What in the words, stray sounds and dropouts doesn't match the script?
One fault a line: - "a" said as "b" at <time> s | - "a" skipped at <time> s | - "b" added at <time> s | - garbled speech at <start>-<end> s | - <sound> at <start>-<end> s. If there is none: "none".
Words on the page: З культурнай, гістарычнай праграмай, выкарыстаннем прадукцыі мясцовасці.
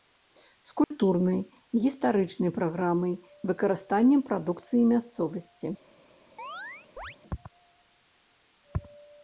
- dropout at 0.8-0.9 s
- chirp at 6.4-7.2 s